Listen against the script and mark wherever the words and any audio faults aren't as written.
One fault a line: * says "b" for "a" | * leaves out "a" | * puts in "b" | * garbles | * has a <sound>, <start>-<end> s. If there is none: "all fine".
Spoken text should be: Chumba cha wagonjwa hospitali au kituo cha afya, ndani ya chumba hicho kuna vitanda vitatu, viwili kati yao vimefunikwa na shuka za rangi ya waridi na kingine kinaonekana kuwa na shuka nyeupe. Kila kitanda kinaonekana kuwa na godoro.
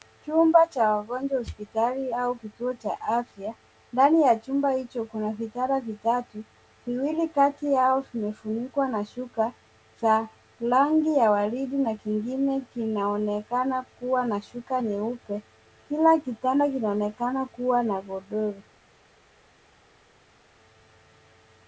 all fine